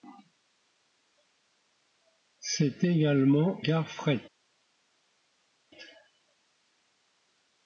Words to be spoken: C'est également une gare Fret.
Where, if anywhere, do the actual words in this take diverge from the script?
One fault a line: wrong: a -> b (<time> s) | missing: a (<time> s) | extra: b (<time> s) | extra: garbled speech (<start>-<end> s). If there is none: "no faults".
missing: une (3.6 s)